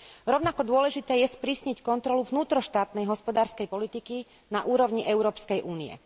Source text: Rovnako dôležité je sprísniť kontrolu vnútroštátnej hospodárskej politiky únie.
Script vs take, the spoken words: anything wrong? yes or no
yes